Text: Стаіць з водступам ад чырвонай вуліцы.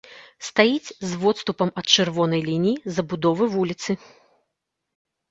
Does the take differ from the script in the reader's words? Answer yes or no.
yes